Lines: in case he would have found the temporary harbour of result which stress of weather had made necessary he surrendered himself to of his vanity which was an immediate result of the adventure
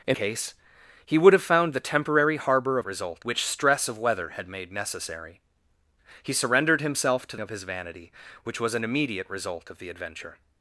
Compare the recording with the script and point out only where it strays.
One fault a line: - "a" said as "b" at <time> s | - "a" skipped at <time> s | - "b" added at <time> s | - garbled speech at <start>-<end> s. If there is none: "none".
none